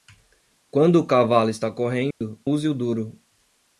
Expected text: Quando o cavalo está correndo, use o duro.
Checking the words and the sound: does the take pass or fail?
fail